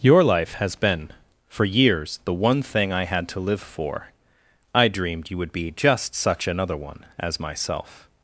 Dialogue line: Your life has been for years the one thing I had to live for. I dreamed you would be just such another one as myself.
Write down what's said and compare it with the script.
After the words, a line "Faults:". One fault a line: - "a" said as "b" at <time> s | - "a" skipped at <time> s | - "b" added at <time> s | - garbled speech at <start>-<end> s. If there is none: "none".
Your life has been for years the one thing I had to live for. I dreamed you would be just such another one as myself.
Faults:
none